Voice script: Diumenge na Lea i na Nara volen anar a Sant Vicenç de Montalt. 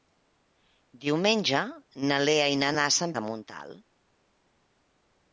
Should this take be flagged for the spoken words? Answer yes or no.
yes